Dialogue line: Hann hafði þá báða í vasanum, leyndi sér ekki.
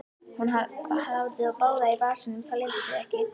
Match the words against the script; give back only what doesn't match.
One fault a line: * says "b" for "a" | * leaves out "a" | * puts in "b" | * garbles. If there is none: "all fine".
* says "Hún" for "Hann"
* puts in "það"